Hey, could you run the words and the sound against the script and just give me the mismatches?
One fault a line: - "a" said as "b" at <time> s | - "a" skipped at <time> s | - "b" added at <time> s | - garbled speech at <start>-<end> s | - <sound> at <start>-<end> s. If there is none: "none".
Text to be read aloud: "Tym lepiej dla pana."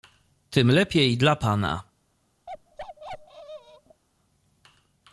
- bark at 2.5-4.0 s